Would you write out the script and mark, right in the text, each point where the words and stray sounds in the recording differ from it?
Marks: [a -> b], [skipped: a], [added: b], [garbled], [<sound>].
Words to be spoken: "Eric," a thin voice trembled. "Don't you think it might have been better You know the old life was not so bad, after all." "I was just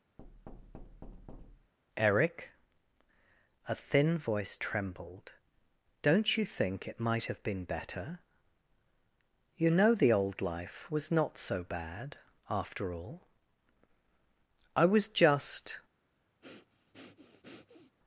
[thud] "Eric," a thin voice trembled. "Don't you think it might have been better You know the old life was not so bad, after all." "I was just [breath]